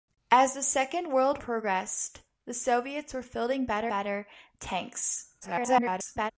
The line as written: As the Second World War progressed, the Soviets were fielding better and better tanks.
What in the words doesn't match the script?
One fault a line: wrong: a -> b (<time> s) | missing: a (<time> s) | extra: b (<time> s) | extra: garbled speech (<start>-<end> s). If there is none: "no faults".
missing: War (1.4 s)
missing: and (3.9 s)
extra: garbled speech (5.4-6.3 s)